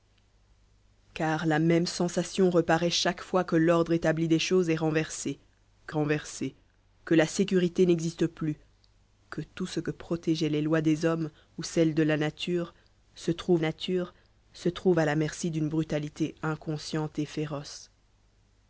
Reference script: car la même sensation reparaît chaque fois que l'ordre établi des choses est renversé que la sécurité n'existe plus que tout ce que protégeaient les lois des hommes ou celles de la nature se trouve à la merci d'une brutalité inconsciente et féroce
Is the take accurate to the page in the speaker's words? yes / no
no